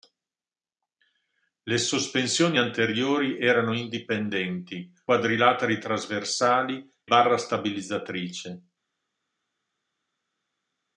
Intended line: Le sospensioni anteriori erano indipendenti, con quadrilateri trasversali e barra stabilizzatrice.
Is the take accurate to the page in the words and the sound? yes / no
no